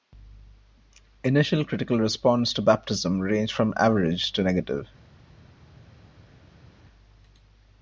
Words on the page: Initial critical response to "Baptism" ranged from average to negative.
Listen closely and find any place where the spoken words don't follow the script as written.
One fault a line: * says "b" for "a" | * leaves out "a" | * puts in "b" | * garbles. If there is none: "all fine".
all fine